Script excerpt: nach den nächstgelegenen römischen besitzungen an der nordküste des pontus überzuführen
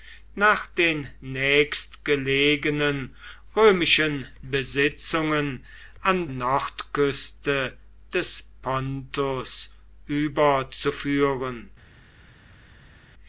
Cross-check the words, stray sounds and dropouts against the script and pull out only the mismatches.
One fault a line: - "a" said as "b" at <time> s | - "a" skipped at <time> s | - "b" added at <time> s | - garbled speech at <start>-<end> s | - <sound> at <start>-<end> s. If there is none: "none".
- "der" skipped at 6.3 s